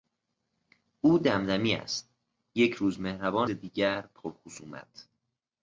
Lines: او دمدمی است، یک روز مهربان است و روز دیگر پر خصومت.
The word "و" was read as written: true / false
false